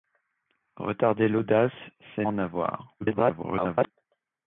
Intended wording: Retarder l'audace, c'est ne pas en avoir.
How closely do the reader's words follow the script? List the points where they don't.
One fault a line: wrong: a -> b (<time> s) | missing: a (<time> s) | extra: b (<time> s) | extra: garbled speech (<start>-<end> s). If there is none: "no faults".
missing: ne pas (2.2 s)
extra: garbled speech (3.0-3.9 s)